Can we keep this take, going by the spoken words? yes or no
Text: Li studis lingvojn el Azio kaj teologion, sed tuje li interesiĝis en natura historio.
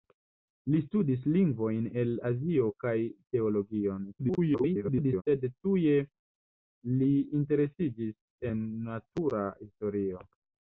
no